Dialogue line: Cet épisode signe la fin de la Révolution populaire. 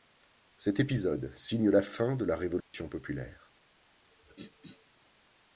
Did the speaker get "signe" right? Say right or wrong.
right